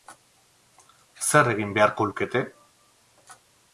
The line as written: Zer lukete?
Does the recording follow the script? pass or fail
fail